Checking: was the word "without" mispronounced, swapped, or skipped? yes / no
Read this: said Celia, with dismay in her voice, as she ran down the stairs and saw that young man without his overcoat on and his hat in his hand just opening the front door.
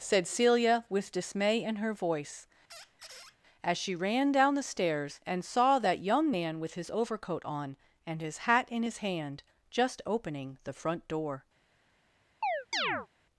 yes